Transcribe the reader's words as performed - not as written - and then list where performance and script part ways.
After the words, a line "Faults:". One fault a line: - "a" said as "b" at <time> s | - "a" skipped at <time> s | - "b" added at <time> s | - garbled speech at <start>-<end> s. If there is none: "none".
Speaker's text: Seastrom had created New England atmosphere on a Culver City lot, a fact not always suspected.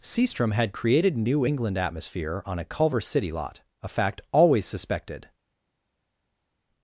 Seastrom had created New England atmosphere on a Culver City lot, a fact always suspected.
Faults:
- "not" skipped at 4.2 s